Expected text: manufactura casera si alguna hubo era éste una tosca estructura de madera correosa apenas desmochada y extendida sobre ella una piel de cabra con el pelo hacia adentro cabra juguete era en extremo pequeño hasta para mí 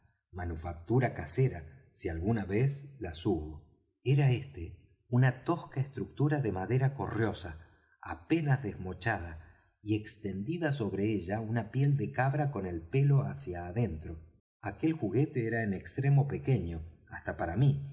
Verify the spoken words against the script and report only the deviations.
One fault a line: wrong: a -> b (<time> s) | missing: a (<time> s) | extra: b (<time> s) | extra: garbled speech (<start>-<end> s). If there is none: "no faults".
extra: vez las (2.5 s)
wrong: cabra -> aquel (14.6 s)